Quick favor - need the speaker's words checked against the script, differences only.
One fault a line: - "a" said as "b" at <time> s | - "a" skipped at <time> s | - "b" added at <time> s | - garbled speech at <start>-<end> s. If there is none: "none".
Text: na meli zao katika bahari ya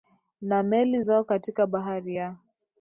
none